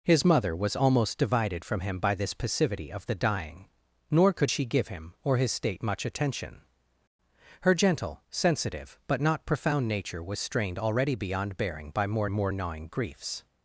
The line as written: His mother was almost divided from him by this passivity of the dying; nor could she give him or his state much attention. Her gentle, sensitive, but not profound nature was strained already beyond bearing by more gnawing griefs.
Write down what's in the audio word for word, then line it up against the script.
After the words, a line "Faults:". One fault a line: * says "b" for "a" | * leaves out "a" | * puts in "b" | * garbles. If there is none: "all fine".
His mother was almost divided from him by this passivity of the dying; nor could she give him or his state much attention. Her gentle, sensitive, but not profound nature was strained already beyond bearing by more more gnawing griefs.
Faults:
* puts in "more"